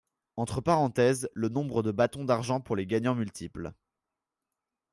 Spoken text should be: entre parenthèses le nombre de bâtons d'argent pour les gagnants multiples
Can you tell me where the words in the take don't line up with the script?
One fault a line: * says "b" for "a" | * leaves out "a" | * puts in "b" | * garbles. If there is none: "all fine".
all fine